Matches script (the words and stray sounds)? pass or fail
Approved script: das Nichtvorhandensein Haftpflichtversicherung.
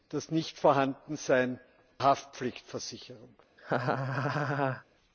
fail